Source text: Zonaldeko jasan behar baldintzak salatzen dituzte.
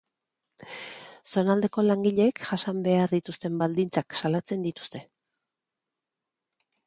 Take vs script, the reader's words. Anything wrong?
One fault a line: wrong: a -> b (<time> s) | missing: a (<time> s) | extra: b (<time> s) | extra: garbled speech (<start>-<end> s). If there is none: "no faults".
extra: langileek (1.9 s)
extra: dituzten (3.1 s)